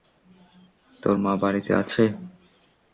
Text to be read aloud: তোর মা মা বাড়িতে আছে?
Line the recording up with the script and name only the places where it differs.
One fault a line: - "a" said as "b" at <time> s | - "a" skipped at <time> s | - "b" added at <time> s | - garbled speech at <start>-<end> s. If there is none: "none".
- "মা" skipped at 1.3 s